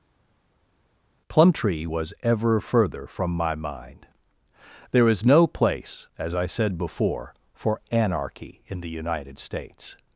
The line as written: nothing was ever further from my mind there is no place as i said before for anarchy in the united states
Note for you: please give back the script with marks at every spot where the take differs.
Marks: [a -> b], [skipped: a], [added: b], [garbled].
[nothing -> plumtree] was ever further from my mind there is no place as i said before for anarchy in the united states